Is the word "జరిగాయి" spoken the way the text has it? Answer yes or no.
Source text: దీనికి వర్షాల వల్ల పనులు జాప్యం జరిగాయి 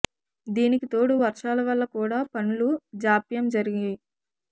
yes